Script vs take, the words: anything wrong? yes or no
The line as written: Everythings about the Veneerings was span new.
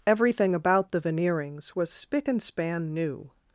yes